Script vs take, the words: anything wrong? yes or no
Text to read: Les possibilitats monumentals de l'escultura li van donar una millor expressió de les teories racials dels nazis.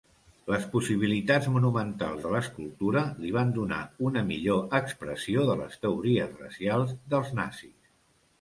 no